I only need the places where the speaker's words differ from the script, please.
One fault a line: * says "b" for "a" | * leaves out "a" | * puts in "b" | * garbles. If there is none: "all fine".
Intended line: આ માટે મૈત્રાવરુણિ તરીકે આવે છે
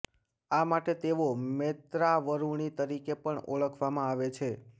* puts in "તેઓ"
* puts in "પણ ઓળખવામાં"